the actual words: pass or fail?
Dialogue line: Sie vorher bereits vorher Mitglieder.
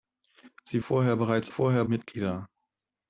pass